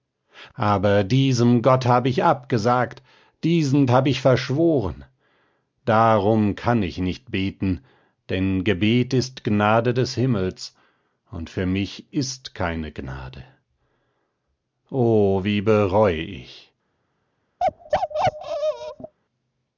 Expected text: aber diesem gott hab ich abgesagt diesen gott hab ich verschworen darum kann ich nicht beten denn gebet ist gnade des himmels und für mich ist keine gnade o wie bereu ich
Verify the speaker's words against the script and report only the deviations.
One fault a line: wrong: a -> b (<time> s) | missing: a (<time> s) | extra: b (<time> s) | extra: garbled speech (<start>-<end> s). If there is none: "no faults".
missing: gott (3.9 s)